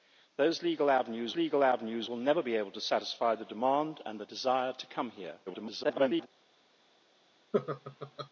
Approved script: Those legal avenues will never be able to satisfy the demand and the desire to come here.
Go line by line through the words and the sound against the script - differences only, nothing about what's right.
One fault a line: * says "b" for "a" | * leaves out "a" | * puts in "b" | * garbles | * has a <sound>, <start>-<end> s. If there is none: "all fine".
* puts in "legal avenues"
* garbles
* has a laugh, 7.5-8.3 s